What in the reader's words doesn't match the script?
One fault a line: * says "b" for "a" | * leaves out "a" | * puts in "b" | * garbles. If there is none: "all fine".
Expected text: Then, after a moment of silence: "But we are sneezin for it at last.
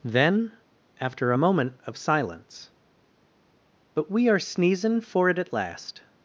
all fine